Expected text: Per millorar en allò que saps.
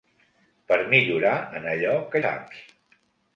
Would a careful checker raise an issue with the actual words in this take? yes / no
no